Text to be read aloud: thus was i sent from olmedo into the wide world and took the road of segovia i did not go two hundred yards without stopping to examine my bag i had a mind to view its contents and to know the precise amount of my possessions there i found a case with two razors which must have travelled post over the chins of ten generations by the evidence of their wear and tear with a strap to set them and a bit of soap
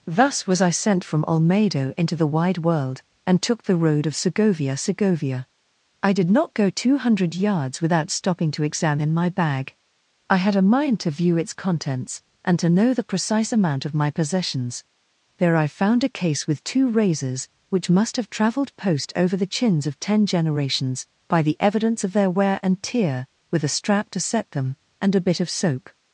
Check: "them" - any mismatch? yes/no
no